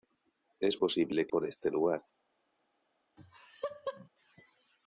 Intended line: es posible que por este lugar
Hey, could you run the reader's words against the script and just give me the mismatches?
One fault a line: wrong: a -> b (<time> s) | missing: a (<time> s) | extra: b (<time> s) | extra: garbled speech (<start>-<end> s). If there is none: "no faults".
no faults